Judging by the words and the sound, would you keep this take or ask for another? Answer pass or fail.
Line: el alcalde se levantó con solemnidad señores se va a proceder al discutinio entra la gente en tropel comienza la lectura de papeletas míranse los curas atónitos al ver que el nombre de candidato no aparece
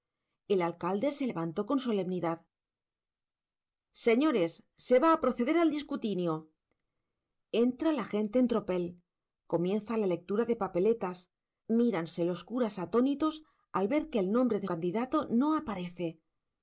pass